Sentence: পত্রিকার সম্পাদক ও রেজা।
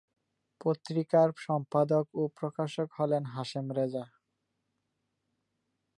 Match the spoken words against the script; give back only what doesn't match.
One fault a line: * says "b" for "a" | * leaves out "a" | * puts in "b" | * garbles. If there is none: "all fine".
* puts in "প্রকাশক হলেন হাশেম"